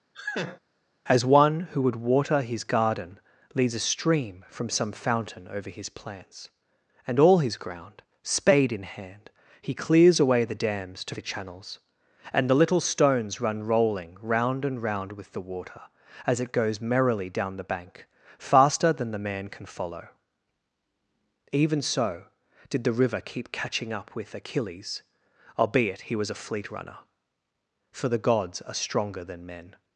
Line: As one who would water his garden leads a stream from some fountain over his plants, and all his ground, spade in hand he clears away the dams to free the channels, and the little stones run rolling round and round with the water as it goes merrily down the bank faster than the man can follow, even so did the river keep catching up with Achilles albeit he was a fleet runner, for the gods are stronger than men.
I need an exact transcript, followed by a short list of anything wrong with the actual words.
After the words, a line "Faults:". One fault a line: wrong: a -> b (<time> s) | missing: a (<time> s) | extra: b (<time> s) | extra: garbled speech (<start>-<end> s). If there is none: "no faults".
As one who would water his garden leads a stream from some fountain over his plants, and all his ground, spade in hand he clears away the dams to the channels, and the little stones run rolling round and round with the water as it goes merrily down the bank faster than the man can follow, even so did the river keep catching up with Achilles albeit he was a fleet runner, for the gods are stronger than men.
Faults:
missing: free (11.1 s)